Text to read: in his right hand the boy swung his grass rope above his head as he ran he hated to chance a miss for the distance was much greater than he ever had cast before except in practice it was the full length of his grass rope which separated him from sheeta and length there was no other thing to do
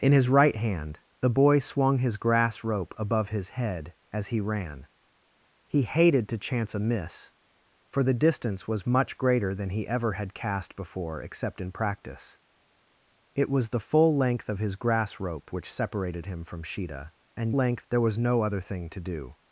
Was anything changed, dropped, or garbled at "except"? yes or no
no